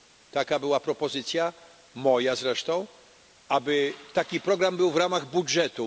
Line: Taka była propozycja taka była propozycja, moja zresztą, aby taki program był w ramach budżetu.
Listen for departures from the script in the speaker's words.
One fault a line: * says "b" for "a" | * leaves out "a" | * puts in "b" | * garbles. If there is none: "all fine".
* leaves out "taka była propozycja"